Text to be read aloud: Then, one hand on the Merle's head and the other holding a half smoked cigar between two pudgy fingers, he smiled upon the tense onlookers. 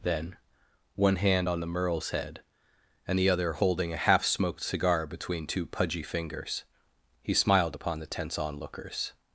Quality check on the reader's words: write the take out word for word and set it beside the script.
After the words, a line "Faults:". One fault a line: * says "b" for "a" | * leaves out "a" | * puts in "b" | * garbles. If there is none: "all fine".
Then, one hand on the Merle's head and the other holding a half smoked cigar between two pudgy fingers, he smiled upon the tense onlookers.
Faults:
all fine